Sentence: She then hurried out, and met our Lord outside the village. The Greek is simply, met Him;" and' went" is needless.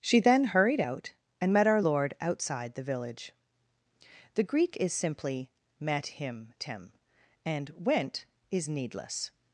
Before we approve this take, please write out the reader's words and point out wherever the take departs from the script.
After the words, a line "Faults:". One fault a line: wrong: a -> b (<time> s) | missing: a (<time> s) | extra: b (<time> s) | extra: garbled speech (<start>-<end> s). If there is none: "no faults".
She then hurried out, and met our Lord outside the village. The Greek is simply, met Him;" tim and' went" is needless.
Faults:
extra: tim (6.6 s)